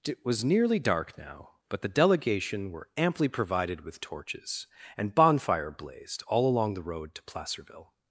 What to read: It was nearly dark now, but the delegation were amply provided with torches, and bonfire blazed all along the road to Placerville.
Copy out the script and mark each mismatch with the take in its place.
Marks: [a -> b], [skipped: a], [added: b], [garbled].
It was nearly dark now, but the delegation were amply provided with torches, and bonfire blazed all along the road to Placerville.